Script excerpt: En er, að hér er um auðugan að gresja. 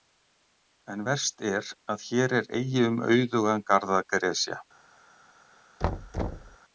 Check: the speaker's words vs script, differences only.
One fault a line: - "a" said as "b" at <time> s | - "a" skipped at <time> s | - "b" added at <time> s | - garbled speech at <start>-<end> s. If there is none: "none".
- "verst" added at 1.1 s
- "eigi" added at 2.6 s
- "garð" added at 3.7 s